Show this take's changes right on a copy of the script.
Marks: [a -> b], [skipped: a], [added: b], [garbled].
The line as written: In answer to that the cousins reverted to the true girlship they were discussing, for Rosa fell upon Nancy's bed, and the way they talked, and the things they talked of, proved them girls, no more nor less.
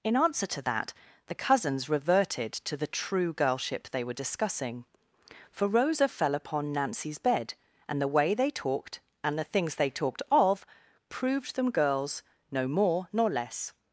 In answer to that the cousins reverted to the true girlship they were discussing, for Rosa fell upon Nancy's bed, and the way they talked, and the things they talked of, proved them girls, no more nor less.